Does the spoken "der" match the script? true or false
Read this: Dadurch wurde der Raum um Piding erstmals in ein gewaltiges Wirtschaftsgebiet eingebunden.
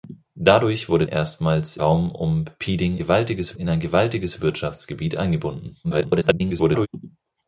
false